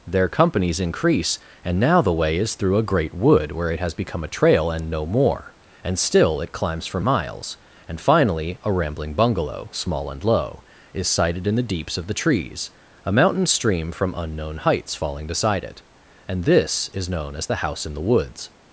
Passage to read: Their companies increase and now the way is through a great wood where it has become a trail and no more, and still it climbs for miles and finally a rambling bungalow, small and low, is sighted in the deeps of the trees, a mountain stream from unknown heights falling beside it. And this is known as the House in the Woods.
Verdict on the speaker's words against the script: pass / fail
pass